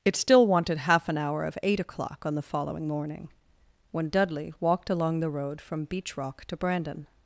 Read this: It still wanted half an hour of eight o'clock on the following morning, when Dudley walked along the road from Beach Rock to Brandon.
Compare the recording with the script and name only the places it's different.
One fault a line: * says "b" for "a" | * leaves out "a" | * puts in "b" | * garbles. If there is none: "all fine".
all fine